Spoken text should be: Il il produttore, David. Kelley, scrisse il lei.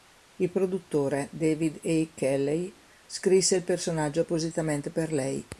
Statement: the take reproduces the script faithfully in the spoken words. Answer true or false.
false